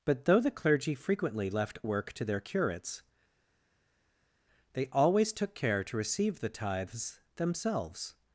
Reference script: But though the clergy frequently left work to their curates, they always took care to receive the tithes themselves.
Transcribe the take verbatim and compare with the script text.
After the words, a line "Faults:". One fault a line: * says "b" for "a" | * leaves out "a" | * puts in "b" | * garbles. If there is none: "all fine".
But though the clergy frequently left work to their curates, they always took care to receive the tithes themselves.
Faults:
all fine